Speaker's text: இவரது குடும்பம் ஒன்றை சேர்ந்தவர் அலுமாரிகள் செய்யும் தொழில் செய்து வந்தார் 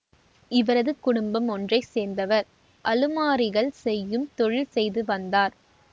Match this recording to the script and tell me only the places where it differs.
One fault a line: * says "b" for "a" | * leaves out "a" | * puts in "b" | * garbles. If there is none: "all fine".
all fine